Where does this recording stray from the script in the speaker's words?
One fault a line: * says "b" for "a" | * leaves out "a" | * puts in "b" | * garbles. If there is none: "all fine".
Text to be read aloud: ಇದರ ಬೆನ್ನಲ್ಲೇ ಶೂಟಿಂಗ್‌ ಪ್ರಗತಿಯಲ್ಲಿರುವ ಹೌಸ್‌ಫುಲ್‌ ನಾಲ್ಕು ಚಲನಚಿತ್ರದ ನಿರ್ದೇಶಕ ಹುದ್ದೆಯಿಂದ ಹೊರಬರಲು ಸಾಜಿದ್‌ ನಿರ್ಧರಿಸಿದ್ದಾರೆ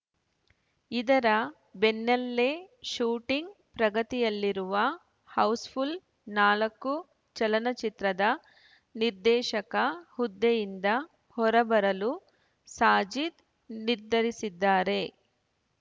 all fine